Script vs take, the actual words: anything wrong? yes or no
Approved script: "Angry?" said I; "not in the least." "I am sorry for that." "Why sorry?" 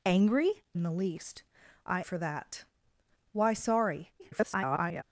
yes